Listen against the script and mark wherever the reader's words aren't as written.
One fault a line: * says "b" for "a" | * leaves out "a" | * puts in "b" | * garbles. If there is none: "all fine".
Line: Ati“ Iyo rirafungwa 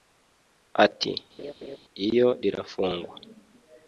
all fine